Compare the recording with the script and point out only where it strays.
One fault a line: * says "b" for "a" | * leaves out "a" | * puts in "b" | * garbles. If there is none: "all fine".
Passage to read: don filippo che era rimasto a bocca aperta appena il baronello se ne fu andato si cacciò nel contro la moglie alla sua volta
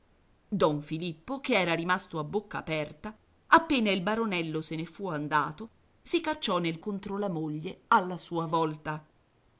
all fine